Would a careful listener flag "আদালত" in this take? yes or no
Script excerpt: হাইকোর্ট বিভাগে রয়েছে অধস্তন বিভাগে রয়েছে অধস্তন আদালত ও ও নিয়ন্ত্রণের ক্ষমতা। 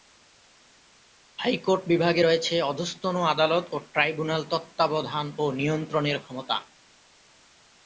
yes